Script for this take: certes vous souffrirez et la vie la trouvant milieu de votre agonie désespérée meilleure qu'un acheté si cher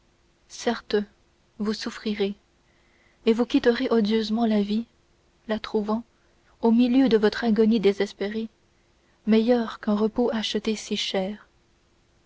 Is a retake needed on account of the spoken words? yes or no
yes